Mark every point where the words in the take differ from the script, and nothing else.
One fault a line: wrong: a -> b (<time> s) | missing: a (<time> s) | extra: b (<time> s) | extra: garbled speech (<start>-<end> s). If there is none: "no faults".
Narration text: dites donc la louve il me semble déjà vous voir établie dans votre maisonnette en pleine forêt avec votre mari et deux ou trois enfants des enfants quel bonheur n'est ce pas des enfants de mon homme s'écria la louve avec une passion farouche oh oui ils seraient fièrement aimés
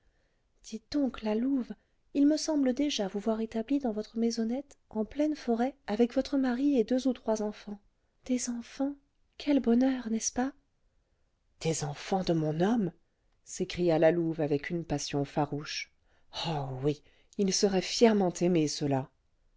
no faults